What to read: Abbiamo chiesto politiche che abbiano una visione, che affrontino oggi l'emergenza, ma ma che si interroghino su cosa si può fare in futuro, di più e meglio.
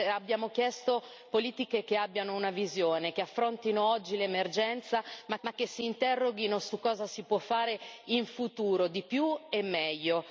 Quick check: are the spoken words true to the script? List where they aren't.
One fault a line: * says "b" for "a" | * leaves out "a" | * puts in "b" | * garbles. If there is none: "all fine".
all fine